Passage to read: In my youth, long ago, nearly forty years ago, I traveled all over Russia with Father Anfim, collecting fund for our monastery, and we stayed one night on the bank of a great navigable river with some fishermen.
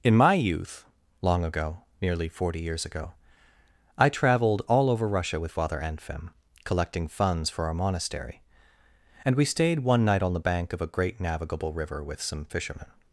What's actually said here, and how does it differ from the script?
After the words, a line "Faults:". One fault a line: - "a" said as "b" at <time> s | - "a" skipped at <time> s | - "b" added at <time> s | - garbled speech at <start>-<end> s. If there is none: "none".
In my youth, long ago, nearly forty years ago, I traveled all over Russia with Father Anfim, collecting funds for our monastery, and we stayed one night on the bank of a great navigable river with some fishermen.
Faults:
- "fund" said as "funds" at 7.1 s